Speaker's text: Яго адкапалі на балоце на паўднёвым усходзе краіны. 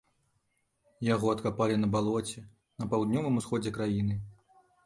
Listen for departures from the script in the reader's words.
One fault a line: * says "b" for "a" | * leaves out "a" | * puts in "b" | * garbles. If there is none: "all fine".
all fine